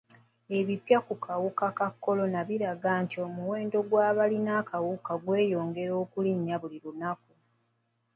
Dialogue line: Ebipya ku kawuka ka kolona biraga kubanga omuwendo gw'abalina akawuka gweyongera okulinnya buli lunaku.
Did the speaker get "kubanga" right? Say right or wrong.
wrong